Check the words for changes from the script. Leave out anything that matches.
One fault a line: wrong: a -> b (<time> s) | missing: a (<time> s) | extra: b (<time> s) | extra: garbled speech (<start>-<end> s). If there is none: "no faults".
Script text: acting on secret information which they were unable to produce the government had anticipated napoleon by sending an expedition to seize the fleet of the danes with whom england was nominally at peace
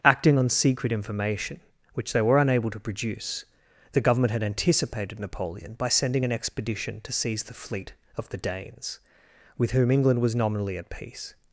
no faults